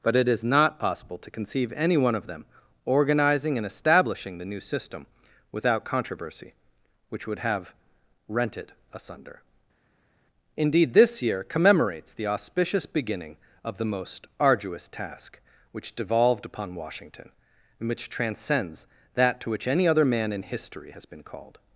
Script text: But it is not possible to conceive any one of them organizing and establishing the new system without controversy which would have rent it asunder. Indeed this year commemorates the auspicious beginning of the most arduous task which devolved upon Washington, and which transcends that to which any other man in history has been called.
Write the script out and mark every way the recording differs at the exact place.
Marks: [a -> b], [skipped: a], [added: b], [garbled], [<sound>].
But it is not possible to conceive any one of them organizing and establishing the new system without controversy which would have rent it asunder. Indeed this year commemorates the auspicious beginning of the most arduous task which devolved upon Washington, and which transcends that to which any other man in history has been called.